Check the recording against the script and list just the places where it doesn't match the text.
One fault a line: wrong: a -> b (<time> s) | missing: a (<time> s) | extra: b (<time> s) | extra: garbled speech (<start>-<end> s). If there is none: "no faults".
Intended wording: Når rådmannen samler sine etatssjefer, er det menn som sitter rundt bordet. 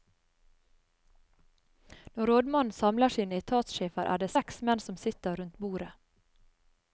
extra: seks (4.3 s)